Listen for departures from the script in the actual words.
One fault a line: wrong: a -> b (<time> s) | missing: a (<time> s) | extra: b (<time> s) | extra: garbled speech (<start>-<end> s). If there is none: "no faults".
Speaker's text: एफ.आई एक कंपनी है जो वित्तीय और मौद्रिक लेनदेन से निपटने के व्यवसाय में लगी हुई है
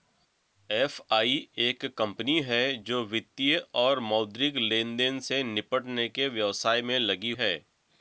missing: हुई (7.3 s)